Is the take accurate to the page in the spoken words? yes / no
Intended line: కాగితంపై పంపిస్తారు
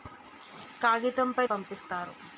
yes